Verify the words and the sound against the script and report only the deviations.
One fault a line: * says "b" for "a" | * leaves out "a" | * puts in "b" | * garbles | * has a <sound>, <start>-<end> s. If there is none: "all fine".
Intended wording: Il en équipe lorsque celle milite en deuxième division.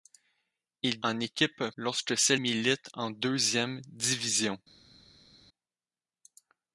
all fine